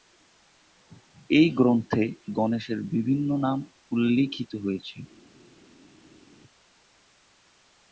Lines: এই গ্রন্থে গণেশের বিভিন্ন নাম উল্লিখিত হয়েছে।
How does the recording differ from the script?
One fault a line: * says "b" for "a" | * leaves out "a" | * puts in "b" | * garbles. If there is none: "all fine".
all fine